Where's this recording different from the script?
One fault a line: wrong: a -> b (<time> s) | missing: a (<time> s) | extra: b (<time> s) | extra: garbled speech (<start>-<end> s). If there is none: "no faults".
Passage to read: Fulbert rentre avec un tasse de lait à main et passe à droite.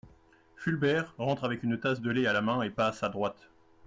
wrong: un -> une (1.6 s)
extra: la (2.3 s)